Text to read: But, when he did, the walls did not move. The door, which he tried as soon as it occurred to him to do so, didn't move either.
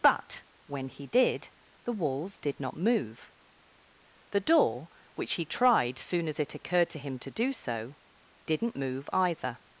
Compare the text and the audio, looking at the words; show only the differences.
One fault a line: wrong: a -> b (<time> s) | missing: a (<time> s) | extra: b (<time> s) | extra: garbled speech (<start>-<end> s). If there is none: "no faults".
missing: as (6.0 s)